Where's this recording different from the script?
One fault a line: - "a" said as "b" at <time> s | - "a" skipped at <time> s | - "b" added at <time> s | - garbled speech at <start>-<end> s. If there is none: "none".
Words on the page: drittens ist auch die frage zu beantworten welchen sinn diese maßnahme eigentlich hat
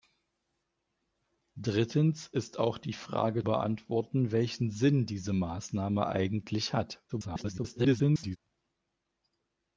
- "zu" skipped at 3.4 s
- garbled speech at 7.1-8.4 s